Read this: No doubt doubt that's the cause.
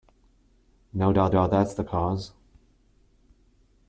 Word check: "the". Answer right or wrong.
right